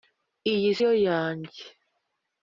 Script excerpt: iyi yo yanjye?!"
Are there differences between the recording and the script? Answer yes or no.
no